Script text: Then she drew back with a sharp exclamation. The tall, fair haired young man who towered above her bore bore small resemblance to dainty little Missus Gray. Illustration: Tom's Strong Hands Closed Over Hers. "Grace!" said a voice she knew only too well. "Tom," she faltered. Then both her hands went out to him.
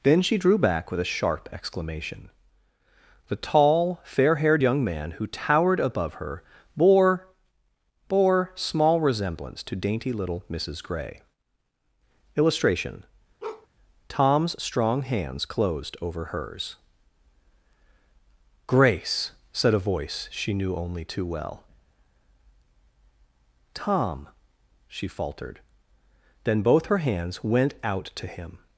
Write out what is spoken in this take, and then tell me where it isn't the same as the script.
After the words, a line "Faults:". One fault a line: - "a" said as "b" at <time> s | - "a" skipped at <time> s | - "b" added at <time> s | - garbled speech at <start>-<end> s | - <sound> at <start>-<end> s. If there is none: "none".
Then she drew back with a sharp exclamation. The tall, fair haired young man who towered above her bore bore small resemblance to dainty little Missus Gray. Illustration: Tom's Strong Hands Closed Over Hers. "Grace!" said a voice she knew only too well. "Tom," she faltered. Then both her hands went out to him.
Faults:
- bark at 13.4-13.7 s